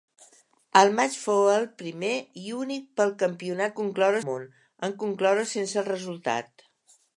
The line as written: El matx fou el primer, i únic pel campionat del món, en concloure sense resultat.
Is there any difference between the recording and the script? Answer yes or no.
yes